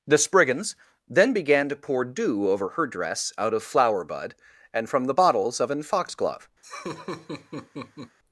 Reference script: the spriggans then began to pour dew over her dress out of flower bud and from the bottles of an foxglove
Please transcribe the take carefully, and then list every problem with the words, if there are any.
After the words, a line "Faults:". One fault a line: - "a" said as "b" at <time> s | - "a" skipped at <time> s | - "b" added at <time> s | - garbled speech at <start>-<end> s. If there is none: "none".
the spriggans then began to pour dew over her dress out of flower bud and from the bottles of an foxglove
Faults:
none